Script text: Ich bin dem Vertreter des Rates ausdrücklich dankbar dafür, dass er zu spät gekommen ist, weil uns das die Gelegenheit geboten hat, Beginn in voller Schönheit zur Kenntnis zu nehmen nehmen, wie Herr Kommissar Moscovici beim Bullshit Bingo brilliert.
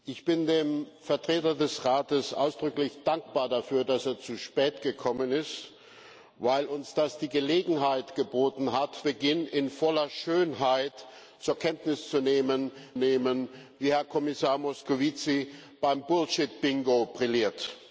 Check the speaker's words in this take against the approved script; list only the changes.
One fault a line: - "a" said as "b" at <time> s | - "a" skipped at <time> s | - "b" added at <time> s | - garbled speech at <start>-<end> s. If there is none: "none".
none